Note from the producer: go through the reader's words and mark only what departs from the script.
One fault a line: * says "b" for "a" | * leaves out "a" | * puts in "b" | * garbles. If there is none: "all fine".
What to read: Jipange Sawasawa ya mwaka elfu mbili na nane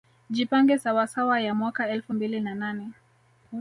all fine